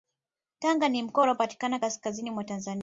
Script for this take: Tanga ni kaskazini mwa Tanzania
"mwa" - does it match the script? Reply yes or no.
yes